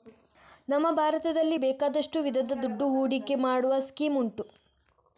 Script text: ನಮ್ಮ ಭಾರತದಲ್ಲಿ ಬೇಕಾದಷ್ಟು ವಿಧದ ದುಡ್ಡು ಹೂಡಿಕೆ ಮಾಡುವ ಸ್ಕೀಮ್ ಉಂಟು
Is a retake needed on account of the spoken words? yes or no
no